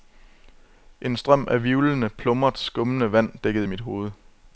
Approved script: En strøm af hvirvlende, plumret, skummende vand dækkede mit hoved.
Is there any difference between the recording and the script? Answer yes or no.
no